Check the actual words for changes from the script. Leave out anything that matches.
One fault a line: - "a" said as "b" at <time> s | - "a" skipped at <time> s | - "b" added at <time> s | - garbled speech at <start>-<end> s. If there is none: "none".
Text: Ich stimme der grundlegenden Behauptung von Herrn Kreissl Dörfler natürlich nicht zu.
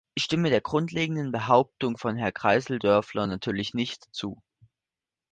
none